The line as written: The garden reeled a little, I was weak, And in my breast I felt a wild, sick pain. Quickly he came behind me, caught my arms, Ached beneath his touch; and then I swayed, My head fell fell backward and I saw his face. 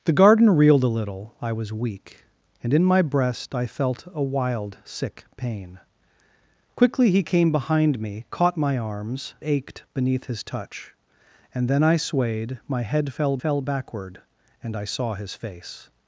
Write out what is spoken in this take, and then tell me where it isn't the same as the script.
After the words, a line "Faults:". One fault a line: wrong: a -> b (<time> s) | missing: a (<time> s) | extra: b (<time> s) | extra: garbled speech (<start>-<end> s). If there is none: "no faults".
The garden reeled a little, I was weak, And in my breast I felt a wild, sick pain. Quickly he came behind me, caught my arms, Ached beneath his touch; and then I swayed, My head fell fell backward and I saw his face.
Faults:
no faults